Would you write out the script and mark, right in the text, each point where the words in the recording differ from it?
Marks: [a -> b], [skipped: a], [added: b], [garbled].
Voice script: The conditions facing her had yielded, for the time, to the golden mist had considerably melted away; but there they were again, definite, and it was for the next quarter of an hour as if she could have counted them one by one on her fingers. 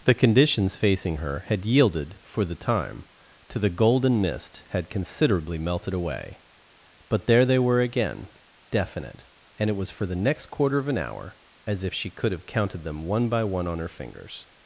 The conditions facing her had yielded, for the time, to the golden mist had considerably melted away; but there they were again, definite, and it was for the next quarter of an hour as if she could have counted them one by one on her fingers.